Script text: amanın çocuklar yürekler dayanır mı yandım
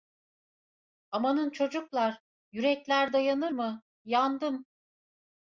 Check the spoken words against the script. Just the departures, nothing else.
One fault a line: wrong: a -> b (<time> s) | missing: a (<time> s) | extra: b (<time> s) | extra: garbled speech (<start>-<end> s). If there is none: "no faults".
no faults